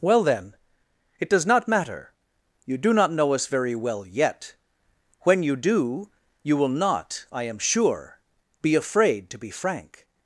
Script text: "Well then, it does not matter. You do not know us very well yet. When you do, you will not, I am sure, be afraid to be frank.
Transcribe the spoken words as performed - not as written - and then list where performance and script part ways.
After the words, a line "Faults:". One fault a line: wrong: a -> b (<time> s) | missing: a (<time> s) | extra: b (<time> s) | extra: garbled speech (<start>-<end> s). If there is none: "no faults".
"Well then, it does not matter. You do not know us very well yet. When you do, you will not, I am sure, be afraid to be frank.
Faults:
no faults